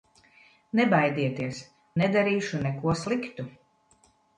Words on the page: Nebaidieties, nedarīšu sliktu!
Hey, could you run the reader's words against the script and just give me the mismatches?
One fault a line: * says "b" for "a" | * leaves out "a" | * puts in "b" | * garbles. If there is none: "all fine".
* puts in "neko"